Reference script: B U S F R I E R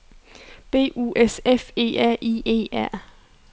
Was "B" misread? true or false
false